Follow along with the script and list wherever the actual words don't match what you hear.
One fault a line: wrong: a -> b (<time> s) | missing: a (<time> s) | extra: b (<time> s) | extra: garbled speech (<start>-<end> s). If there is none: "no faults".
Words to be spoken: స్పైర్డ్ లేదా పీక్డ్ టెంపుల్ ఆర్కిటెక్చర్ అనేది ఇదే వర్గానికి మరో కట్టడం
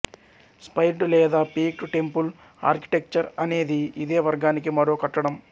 no faults